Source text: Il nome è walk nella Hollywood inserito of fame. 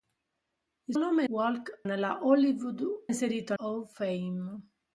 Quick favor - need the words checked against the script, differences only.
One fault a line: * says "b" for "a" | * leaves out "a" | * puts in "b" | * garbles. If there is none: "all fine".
all fine